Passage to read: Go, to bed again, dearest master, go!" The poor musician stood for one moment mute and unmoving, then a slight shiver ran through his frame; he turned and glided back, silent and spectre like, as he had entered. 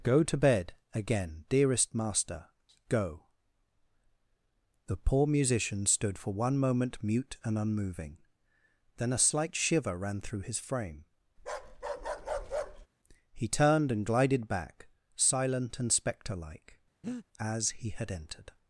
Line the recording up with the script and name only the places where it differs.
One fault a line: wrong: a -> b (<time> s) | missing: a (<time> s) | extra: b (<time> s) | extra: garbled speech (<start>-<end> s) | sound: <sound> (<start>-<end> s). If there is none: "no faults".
sound: bark (11.4-12.9 s)
sound: breath (17.0-17.3 s)